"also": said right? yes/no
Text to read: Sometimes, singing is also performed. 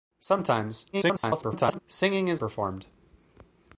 no